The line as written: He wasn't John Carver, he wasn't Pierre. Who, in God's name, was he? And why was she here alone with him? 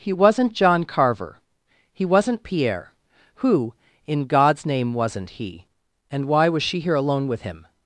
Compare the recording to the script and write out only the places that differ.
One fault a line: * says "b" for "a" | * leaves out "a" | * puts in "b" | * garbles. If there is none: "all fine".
* says "wasn't" for "was"